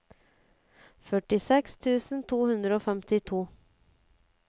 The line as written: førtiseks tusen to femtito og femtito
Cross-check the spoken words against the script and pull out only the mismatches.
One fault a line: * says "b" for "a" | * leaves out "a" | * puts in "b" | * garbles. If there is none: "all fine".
* says "hundre" for "femtito"